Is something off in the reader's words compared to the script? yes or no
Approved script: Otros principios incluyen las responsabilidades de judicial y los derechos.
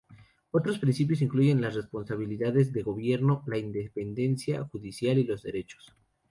yes